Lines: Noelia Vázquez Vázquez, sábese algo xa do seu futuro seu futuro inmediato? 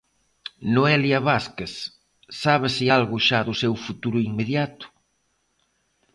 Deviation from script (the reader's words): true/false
true